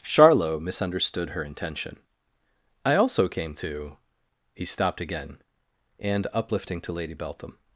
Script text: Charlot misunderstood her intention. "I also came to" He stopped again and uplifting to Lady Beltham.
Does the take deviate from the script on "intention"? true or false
false